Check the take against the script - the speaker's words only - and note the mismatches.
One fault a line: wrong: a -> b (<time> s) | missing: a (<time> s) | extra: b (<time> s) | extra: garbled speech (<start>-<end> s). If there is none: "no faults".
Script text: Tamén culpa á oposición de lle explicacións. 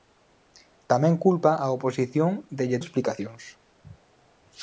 no faults